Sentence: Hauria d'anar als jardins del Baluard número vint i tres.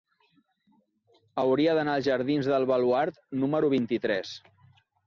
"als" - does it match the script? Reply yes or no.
yes